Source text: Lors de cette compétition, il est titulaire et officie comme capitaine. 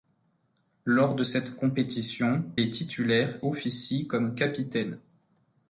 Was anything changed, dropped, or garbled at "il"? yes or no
yes